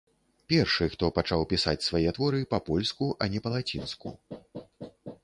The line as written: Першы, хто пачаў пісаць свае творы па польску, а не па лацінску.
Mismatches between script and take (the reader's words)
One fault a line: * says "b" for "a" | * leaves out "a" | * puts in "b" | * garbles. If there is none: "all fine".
all fine